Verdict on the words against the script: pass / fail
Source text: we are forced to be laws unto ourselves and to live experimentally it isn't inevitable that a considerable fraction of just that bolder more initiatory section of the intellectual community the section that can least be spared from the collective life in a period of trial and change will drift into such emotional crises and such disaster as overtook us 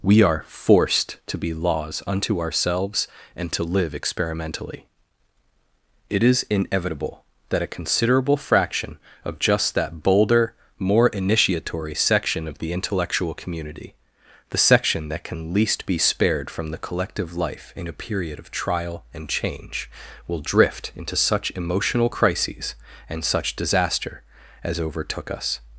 fail